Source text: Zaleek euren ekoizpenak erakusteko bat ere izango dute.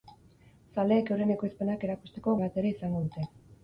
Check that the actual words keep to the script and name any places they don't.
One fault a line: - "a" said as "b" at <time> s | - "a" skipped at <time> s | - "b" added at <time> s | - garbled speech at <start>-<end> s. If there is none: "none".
none